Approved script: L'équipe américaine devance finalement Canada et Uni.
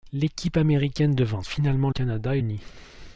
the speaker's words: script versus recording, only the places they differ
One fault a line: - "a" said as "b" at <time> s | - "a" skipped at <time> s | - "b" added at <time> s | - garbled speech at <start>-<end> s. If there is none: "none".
none